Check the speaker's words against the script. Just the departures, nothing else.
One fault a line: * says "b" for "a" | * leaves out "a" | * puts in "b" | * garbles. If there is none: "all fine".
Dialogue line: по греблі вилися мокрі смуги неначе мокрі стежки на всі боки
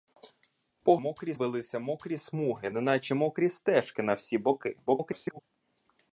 * says "мокрі" for "греблі"
* garbles